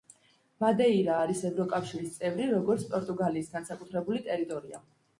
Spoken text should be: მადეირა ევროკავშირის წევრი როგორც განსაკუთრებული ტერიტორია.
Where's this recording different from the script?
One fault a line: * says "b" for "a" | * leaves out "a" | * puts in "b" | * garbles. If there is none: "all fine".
* puts in "არის"
* puts in "პორტუგალიის"